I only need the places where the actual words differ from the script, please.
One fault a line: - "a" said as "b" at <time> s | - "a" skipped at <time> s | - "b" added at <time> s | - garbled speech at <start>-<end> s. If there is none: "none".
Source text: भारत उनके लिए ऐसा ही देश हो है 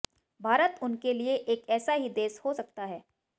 - "एक" added at 1.4 s
- "सकता" added at 2.5 s